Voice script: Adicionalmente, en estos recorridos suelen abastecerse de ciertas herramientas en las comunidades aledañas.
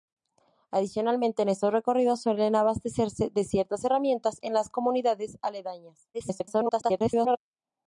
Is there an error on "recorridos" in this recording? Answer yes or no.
no